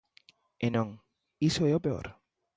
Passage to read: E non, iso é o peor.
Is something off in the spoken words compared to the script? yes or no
no